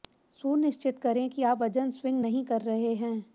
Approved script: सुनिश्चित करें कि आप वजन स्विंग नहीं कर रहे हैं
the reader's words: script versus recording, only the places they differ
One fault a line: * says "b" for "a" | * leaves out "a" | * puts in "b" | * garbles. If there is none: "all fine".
all fine